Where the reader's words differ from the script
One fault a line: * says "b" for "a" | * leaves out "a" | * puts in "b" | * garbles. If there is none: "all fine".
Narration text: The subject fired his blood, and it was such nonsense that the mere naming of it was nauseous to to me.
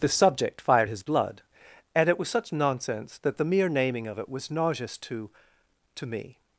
all fine